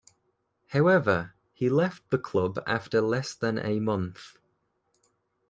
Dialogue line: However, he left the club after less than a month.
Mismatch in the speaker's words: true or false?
false